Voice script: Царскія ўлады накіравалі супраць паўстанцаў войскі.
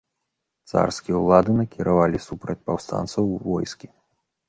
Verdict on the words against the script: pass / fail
pass